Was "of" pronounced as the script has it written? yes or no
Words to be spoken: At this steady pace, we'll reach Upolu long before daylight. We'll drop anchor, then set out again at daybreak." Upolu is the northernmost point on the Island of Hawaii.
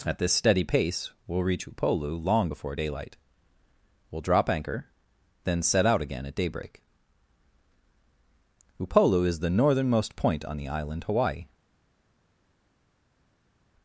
no